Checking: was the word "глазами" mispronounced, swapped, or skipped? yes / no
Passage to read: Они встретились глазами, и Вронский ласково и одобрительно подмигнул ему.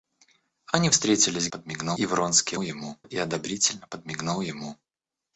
yes